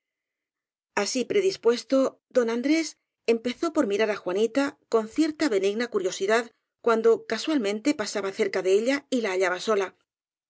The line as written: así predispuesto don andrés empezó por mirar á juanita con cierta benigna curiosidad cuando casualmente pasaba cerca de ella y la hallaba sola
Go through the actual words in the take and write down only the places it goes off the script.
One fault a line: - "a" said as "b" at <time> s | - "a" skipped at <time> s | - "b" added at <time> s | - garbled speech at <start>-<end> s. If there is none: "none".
none